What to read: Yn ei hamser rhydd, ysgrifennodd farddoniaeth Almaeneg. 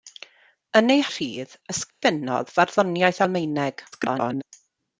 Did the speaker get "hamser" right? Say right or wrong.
wrong